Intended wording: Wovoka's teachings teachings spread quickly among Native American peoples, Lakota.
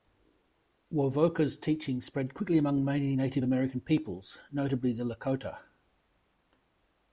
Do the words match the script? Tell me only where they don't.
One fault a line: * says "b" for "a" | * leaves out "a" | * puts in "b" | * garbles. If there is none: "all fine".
* leaves out "teachings"
* puts in "many"
* puts in "notably the"